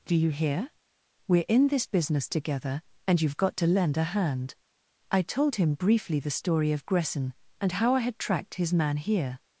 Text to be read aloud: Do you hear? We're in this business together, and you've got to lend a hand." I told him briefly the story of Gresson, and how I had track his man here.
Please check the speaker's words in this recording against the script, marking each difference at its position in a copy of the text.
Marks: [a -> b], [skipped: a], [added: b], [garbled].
Do you hear? We're in this business together, and you've got to lend a hand." I told him briefly the story of Gresson, and how I had [track -> tracked] his man here.